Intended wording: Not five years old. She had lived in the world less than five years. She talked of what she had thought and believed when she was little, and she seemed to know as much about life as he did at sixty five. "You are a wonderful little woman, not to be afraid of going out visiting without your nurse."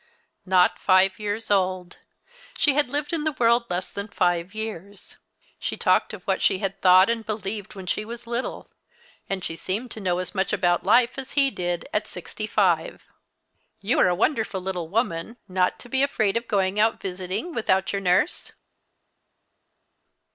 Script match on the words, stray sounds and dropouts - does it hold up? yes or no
yes